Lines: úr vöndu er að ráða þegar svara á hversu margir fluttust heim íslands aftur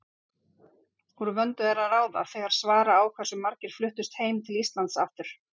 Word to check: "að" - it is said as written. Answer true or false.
true